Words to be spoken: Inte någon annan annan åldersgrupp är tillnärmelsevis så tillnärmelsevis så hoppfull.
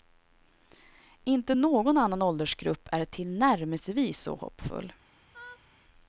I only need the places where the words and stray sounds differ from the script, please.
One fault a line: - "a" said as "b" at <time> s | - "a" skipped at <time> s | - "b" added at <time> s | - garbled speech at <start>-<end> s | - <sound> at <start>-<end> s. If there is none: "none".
- "annan" skipped at 2.2 s
- "tillnärmelsevis så" skipped at 4.3 s
- laugh at 5.3-5.7 s